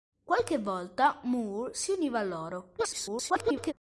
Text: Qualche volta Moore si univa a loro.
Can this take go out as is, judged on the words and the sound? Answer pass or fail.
fail